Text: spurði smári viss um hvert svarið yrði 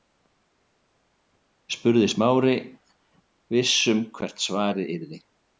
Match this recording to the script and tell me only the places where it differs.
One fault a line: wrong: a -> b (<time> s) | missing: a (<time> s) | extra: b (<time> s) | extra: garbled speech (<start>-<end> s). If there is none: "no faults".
no faults